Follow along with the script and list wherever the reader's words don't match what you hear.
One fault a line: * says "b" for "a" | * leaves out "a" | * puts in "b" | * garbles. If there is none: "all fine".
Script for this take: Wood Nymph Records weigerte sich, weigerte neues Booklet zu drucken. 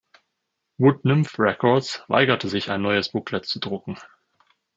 * says "ein" for "weigerte"